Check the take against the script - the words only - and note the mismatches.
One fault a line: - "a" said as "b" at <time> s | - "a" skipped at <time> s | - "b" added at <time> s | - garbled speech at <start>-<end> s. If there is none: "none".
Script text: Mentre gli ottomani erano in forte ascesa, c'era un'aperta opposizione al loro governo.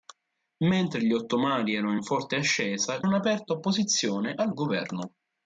- "c'era" skipped at 3.0 s
- "loro" skipped at 4.5 s